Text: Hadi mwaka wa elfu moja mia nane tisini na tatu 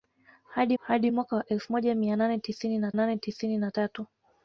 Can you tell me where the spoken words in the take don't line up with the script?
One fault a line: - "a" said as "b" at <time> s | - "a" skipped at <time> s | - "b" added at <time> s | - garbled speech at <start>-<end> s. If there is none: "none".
- "hadi" added at 0.8 s
- "nane tisini na" added at 2.9 s